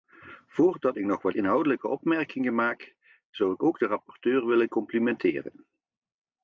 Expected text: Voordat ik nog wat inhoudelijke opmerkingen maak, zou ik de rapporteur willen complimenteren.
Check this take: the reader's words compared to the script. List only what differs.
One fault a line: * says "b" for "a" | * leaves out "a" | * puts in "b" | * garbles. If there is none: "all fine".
* puts in "ook"